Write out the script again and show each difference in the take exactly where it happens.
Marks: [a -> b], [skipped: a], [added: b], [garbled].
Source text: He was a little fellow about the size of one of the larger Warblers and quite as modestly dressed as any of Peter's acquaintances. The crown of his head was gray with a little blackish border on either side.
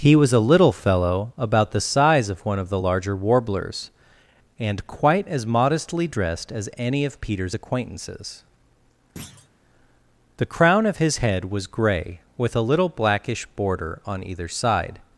He was a little fellow about the size of one of the larger Warblers and quite as modestly dressed as any of Peter's acquaintances. The crown of his head was gray with a little blackish border on either side.